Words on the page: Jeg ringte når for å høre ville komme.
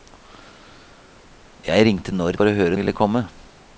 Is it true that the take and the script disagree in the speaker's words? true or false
false